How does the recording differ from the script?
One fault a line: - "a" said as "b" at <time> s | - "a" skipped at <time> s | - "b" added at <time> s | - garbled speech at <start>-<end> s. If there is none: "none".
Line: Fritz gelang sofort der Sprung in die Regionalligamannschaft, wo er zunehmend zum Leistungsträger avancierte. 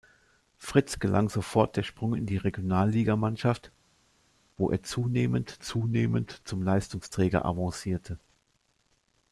- "zunehmend" added at 5.6 s